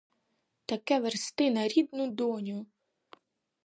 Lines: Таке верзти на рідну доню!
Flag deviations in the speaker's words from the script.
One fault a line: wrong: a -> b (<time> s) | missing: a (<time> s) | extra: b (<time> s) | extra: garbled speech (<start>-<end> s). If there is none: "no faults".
no faults